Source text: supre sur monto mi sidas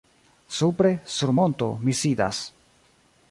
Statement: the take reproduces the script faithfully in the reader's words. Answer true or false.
true